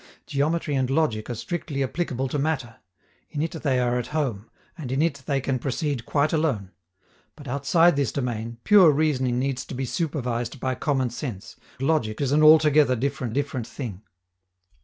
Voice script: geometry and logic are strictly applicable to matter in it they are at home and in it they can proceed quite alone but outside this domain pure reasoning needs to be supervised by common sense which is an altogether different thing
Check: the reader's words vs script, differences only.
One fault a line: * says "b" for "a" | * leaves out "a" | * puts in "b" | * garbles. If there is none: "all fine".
* says "logic" for "which"
* puts in "different"